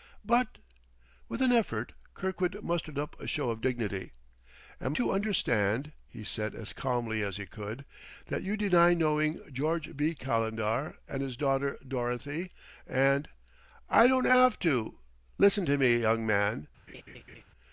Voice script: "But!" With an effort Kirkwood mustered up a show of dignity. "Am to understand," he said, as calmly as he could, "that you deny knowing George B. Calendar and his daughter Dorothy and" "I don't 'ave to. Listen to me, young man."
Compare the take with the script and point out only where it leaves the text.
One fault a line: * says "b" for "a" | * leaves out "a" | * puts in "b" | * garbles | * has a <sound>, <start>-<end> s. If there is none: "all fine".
* has a laugh, 16.9-17.4 s